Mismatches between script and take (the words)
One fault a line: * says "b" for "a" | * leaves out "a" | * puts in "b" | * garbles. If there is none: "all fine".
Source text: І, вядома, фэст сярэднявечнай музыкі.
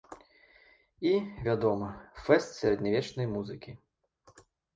all fine